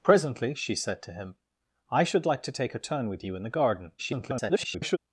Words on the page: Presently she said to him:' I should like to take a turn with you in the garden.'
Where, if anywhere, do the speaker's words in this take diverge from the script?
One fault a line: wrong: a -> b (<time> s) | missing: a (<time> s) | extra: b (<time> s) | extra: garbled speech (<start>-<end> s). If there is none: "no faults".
extra: garbled speech (4.0-5.0 s)